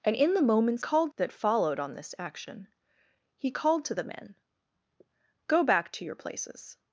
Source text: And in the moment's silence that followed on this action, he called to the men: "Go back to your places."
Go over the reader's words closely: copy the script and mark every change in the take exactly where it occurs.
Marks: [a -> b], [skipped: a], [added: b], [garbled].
And in the moment's [silence -> called] that followed on this action, he called to the men: "Go back to your places."